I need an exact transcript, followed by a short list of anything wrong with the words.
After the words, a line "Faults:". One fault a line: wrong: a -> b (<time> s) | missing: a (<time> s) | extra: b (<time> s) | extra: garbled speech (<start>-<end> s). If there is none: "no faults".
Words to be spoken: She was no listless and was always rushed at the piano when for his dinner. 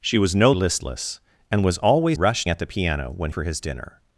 She was no listless and was always rushed at the piano when for his dinner.
Faults:
no faults